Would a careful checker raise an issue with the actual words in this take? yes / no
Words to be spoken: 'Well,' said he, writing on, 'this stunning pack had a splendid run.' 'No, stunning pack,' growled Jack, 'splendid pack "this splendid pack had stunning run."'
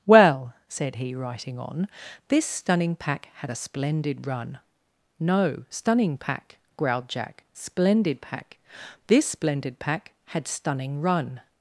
no